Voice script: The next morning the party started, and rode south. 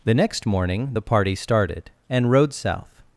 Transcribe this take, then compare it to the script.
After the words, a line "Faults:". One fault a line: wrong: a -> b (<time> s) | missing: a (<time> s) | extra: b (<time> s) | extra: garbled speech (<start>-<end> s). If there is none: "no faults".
The next morning the party started, and rode south.
Faults:
no faults